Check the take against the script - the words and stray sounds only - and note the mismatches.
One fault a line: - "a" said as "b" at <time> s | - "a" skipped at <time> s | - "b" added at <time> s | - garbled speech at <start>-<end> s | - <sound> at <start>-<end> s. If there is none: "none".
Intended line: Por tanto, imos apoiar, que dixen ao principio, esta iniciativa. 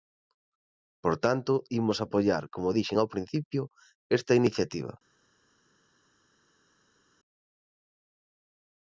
- "que" said as "como" at 2.5 s